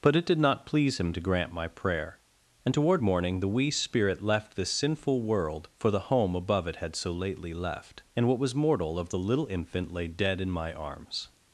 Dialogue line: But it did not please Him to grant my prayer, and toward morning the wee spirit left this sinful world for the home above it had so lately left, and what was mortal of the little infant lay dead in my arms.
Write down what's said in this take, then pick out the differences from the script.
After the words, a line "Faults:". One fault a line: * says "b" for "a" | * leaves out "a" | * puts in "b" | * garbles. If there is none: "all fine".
But it did not please Him to grant my prayer, and toward morning the wee spirit left this sinful world for the home above it had so lately left, and what was mortal of the little infant lay dead in my arms.
Faults:
all fine